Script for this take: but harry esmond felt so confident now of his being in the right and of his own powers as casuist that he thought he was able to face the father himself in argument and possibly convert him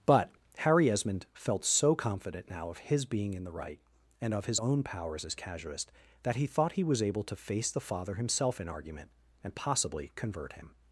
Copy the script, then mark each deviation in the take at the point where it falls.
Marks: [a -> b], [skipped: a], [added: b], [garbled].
but harry esmond felt so confident now of his being in the right and of his own powers as casuist that he thought he was able to face the father himself in argument and possibly convert him